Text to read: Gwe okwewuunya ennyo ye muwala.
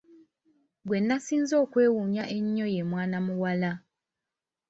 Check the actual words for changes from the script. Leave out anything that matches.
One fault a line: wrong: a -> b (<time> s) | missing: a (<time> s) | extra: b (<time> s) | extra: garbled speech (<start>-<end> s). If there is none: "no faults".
extra: nasinze (1.1 s)
extra: mwana (2.9 s)